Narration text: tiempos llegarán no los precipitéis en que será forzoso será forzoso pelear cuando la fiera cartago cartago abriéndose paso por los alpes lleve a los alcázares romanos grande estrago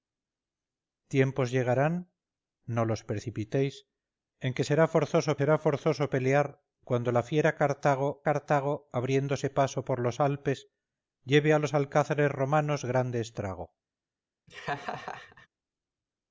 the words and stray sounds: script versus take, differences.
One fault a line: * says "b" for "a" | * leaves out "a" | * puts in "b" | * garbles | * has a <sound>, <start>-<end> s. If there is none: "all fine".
* has a laugh, 14.5-15.5 s